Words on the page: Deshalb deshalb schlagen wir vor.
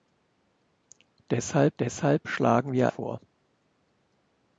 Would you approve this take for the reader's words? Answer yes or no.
yes